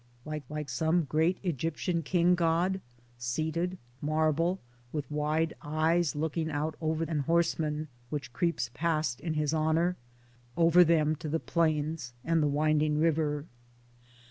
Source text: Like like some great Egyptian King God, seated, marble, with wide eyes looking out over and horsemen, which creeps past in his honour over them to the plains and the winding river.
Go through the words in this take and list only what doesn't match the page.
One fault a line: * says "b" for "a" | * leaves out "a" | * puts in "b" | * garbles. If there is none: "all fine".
all fine